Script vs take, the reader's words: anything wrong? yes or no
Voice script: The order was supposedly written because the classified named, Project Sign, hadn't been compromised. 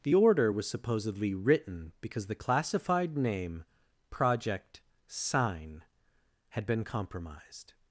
yes